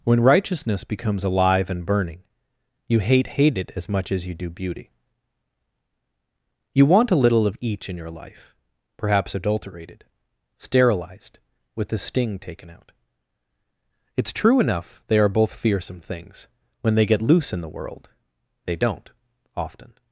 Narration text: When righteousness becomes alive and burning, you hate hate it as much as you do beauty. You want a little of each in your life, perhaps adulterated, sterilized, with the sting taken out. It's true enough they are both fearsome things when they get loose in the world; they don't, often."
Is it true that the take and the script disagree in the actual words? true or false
false